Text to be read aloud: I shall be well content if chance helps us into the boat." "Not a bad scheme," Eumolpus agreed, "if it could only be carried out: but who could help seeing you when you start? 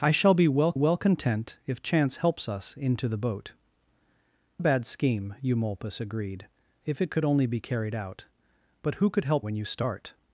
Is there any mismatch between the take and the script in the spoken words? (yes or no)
yes